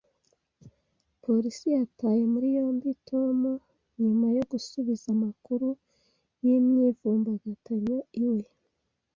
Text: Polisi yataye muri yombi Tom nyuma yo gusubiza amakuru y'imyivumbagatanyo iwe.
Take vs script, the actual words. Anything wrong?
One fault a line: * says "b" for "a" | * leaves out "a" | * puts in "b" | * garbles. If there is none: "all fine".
all fine